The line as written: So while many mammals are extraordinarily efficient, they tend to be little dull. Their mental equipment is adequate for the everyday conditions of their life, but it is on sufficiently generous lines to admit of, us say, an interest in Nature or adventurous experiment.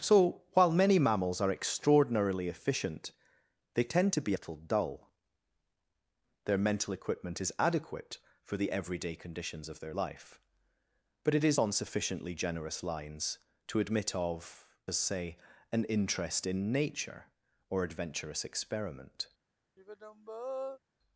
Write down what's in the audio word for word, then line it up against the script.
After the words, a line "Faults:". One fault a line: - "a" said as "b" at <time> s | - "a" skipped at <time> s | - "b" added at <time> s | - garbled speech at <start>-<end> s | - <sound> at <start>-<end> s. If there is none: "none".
So while many mammals are extraordinarily efficient, they tend to be little dull. Their mental equipment is adequate for the everyday conditions of their life, but it is on sufficiently generous lines to admit of, us say, an interest in Nature or adventurous experiment.
Faults:
- sigh at 19.8-20.8 s